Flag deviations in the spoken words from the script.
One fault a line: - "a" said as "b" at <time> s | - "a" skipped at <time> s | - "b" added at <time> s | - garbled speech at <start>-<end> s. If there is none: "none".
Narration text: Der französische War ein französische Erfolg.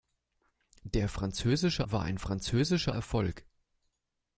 none